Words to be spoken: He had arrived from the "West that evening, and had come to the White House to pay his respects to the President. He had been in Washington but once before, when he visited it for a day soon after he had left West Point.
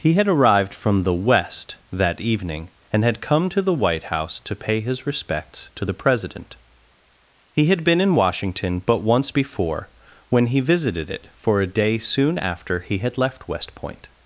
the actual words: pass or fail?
pass